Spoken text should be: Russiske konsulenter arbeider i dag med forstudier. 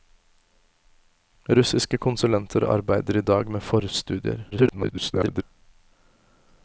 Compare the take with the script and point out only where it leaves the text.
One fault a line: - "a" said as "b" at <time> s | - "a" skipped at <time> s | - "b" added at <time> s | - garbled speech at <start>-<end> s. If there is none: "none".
- garbled speech at 4.5-5.4 s